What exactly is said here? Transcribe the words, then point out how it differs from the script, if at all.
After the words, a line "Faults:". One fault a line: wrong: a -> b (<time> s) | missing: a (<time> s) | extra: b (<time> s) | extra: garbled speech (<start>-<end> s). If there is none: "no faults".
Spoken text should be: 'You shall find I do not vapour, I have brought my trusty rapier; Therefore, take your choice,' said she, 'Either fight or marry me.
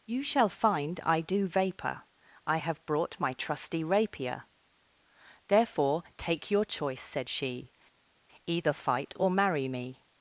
'You shall find I do vapour, I have brought my trusty rapier; Therefore, take your choice,' said she, 'Either fight or marry me.
Faults:
missing: not (1.5 s)